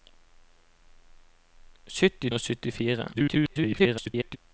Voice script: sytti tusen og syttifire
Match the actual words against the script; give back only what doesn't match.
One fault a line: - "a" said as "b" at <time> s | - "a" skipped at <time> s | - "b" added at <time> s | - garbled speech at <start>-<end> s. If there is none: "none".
- "tusen" skipped at 2.3 s
- garbled speech at 3.1-4.4 s